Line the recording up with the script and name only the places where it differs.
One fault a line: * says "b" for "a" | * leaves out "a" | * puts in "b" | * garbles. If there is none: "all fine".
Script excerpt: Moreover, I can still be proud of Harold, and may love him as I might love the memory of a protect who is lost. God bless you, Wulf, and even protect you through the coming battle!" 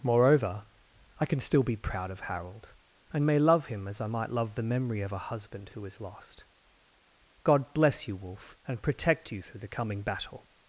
* says "husband" for "protect"
* leaves out "even"